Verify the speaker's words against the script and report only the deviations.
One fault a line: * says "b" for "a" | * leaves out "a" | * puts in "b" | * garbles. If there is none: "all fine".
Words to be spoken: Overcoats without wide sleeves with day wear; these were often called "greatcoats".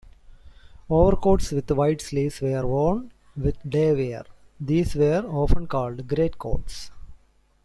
* says "with" for "without"
* puts in "were worn"